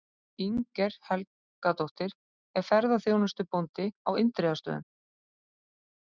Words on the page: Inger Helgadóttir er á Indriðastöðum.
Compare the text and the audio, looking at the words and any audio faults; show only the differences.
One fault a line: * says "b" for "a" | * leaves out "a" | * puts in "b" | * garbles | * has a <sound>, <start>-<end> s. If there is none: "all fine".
* puts in "ferðaþjónustubóndi"